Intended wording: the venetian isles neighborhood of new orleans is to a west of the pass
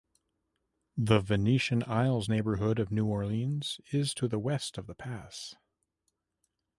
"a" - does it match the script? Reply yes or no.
no